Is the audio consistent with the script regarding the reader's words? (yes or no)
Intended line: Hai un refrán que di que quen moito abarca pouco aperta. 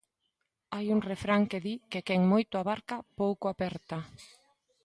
yes